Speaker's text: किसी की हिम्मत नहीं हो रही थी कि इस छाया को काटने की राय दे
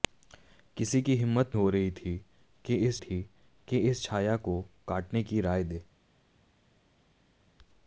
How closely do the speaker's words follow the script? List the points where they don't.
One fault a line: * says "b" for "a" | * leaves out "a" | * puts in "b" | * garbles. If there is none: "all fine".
* leaves out "नहीं"
* puts in "थी कि इस"